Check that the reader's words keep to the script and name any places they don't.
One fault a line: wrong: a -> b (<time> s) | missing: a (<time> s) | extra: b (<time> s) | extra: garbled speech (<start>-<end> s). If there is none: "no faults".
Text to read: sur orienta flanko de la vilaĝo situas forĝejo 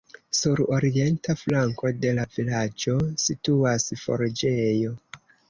no faults